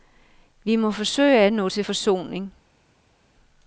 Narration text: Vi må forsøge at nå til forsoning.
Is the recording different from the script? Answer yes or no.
no